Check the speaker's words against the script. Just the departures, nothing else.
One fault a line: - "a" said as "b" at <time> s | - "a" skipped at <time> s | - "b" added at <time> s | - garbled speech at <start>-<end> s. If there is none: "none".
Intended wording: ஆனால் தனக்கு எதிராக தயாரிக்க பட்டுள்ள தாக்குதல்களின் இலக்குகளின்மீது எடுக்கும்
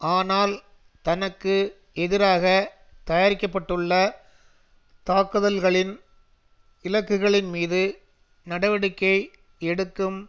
- "நடவடிக்கை" added at 8.5 s